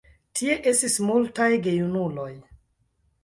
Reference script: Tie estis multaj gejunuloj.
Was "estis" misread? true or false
false